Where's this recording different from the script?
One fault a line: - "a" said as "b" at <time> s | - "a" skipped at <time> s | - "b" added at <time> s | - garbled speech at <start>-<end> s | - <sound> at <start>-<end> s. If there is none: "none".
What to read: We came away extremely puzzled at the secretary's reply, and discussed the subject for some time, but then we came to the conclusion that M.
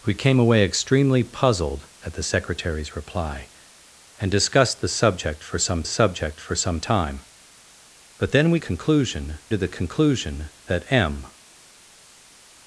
- "subject for some" added at 5.8 s
- "came" said as "conclusion" at 8.6 s